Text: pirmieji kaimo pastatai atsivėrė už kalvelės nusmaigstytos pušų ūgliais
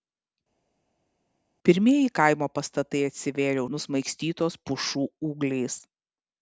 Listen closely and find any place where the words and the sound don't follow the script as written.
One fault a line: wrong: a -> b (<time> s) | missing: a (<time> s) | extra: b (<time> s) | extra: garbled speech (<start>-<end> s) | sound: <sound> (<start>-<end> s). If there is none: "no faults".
missing: už kalvelės (3.6 s)